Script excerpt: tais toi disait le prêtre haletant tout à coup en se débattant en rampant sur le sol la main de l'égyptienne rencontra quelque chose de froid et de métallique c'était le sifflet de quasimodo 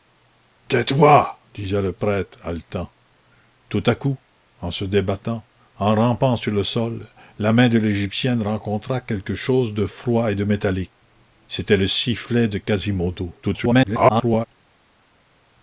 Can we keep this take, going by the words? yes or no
no